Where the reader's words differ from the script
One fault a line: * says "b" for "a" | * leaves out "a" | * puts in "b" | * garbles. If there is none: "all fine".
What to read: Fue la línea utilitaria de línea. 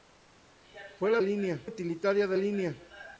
all fine